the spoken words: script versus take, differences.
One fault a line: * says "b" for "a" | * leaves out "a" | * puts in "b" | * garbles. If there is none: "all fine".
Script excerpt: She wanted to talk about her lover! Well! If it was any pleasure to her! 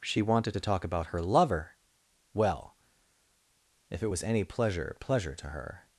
* puts in "pleasure"